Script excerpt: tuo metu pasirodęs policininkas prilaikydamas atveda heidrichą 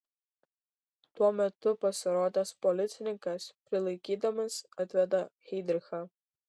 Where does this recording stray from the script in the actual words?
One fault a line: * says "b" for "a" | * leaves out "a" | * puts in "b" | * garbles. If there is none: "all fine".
all fine